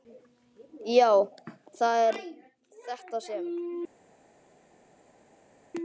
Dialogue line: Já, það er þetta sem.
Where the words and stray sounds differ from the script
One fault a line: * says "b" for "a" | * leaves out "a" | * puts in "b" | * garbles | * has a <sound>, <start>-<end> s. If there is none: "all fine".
all fine